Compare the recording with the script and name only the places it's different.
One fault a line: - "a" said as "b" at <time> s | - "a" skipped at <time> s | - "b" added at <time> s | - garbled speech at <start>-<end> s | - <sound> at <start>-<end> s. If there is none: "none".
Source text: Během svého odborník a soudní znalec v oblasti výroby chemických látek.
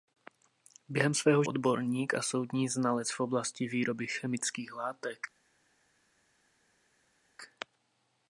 none